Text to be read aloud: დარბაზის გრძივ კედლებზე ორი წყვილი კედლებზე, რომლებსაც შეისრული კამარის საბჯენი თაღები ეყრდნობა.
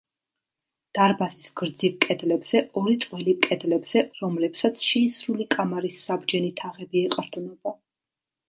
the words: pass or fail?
pass